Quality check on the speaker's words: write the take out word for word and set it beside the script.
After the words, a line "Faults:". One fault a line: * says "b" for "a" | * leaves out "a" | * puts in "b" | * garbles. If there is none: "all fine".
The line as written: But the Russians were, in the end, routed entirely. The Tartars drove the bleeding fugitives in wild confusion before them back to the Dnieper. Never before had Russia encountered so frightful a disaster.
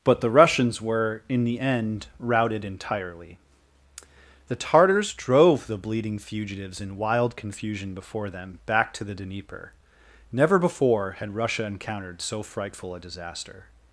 But the Russians were, in the end, routed entirely. The Tartars drove the bleeding fugitives in wild confusion before them back to the Dnieper. Never before had Russia encountered so frightful a disaster.
Faults:
all fine